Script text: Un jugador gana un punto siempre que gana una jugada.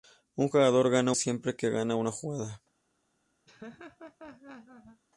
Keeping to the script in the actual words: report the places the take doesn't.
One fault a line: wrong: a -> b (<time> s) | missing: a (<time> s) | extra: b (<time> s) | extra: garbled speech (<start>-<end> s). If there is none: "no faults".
missing: un punto (1.1 s)